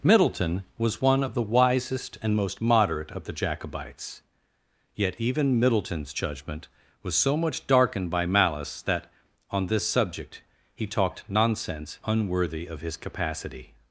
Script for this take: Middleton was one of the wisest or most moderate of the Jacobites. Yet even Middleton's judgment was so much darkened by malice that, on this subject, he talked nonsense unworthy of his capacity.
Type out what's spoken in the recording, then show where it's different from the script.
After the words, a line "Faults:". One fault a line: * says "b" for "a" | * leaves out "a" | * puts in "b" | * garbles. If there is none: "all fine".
Middleton was one of the wisest and most moderate of the Jacobites. Yet even Middleton's judgment was so much darkened by malice that, on this subject, he talked nonsense unworthy of his capacity.
Faults:
* says "and" for "or"